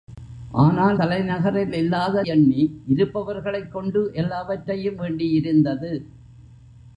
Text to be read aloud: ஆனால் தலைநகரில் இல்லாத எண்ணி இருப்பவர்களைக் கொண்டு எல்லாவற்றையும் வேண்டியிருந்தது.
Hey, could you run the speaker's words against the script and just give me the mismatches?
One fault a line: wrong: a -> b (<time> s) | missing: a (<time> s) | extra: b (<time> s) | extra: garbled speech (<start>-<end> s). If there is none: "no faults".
no faults